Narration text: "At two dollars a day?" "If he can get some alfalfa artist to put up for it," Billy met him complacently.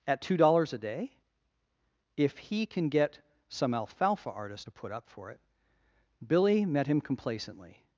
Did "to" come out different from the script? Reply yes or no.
no